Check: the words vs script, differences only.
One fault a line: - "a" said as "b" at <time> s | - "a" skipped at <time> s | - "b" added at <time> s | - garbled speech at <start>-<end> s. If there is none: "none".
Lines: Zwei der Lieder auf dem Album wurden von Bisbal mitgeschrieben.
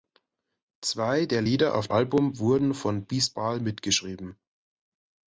- "dem" skipped at 1.9 s